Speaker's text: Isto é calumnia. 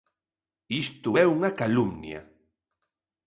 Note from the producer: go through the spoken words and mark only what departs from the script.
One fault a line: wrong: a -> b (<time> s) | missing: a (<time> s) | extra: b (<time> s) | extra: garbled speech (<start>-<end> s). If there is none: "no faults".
extra: unha (1.4 s)